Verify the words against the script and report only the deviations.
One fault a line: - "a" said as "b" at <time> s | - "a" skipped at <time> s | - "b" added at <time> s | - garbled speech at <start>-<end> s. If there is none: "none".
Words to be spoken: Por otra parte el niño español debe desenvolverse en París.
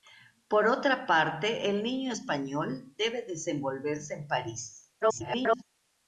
- garbled speech at 5.0-5.6 s